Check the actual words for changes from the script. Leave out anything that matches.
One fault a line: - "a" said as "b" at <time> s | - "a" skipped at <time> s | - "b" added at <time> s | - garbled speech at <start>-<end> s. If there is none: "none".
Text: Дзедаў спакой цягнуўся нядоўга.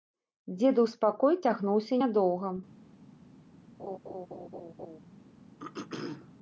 none